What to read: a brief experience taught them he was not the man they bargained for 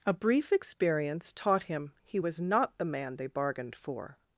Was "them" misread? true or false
true